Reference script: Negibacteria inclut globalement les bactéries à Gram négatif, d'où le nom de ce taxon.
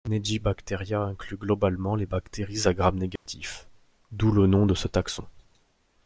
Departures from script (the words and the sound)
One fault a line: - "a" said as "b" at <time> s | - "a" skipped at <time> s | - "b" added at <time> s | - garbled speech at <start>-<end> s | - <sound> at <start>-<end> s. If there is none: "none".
- dropout at 3.2-3.3 s